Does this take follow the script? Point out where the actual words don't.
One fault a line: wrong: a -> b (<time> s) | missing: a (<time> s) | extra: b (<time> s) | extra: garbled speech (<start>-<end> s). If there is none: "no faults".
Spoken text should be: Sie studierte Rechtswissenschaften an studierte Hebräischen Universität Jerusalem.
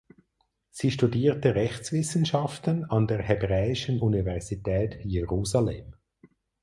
wrong: studierte -> der (3.1 s)